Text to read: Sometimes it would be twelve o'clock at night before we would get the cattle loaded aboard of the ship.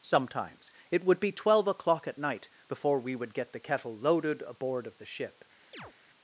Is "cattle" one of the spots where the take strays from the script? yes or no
yes